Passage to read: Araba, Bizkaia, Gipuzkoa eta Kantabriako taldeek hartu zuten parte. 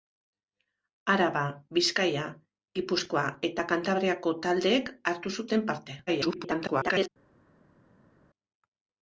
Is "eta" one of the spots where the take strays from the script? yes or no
no